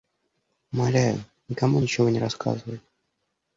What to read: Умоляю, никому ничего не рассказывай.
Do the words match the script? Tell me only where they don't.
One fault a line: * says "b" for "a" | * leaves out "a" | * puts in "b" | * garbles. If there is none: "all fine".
all fine